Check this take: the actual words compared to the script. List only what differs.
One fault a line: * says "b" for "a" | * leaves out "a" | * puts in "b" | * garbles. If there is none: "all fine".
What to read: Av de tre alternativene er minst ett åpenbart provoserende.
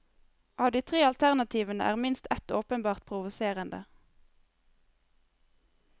all fine